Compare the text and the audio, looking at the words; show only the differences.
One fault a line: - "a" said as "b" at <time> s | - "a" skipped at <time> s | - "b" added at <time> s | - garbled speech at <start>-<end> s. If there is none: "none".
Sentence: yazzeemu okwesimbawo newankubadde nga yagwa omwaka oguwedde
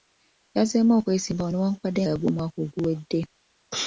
- "nga" skipped at 2.0 s